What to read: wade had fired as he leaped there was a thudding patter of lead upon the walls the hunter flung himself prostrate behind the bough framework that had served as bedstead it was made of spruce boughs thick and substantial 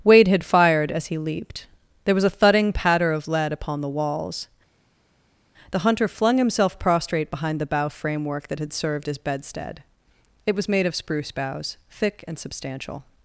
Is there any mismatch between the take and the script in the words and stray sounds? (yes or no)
no